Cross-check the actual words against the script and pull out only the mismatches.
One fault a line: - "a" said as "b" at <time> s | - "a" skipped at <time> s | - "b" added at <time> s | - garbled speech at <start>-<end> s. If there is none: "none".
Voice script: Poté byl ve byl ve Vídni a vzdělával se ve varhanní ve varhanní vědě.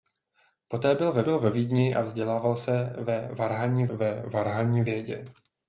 none